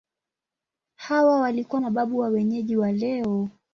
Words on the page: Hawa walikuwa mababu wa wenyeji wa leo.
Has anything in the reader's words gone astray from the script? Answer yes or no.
no